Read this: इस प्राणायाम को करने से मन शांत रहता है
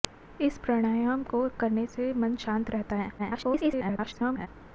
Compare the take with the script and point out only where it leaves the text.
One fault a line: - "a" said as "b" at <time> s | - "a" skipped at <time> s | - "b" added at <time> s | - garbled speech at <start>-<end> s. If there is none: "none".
- garbled speech at 3.2-4.5 s